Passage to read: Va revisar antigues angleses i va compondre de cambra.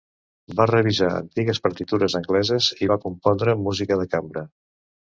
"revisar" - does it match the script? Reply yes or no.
yes